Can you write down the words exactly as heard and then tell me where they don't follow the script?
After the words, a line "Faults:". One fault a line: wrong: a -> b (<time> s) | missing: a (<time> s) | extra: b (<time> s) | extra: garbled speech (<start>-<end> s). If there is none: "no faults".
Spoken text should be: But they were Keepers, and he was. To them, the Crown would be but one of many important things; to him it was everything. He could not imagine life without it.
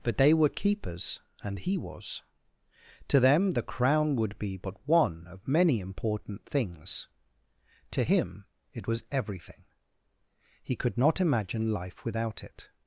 But they were Keepers, and he was. To them, the Crown would be but one of many important things; to him it was everything. He could not imagine life without it.
Faults:
no faults